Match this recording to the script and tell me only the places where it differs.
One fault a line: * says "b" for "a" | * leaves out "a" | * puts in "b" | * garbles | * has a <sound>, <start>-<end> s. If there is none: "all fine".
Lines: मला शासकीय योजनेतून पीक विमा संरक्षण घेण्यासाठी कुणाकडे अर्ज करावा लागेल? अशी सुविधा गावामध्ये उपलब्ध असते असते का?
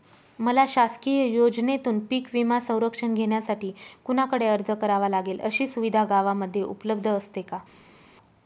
* leaves out "असते"